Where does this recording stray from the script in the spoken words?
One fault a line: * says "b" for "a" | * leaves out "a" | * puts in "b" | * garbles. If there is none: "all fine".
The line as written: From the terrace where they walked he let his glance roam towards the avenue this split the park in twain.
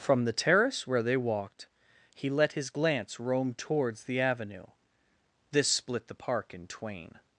all fine